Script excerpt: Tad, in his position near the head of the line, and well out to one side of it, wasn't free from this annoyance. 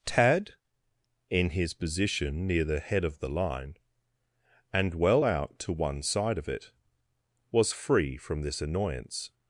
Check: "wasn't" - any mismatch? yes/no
yes